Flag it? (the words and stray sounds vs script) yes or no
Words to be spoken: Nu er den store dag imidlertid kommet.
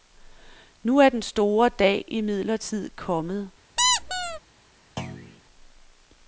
yes